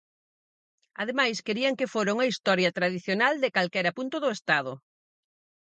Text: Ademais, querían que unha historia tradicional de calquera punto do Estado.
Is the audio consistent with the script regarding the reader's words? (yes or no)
no